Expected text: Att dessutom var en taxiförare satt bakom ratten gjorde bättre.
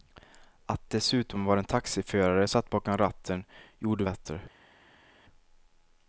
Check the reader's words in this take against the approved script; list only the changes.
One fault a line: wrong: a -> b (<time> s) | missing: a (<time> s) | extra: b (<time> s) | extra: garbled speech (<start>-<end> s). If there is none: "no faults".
no faults